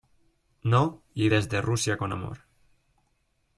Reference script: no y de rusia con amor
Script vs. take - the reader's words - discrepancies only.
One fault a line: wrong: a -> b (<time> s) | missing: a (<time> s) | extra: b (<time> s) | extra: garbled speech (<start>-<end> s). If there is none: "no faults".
wrong: de -> desde (1.3 s)